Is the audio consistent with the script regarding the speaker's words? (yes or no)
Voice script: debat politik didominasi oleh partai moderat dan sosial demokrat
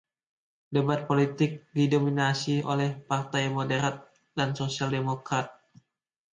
yes